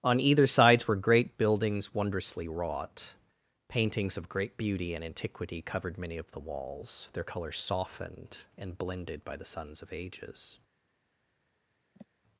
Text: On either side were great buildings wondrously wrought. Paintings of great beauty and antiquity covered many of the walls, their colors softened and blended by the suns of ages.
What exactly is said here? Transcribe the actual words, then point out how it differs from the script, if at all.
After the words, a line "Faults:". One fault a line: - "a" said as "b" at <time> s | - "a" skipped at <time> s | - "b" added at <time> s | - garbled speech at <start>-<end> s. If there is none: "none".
On either sides were great buildings wondrously wrought. Paintings of great beauty and antiquity covered many of the walls, their colors softened and blended by the suns of ages.
Faults:
- "side" said as "sides" at 0.5 s